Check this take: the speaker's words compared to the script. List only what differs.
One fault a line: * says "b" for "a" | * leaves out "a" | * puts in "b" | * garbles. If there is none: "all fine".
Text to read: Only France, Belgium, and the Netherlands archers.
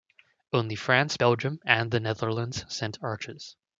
* puts in "sent"